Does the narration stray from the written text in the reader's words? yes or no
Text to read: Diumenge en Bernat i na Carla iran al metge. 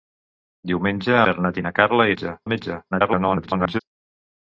yes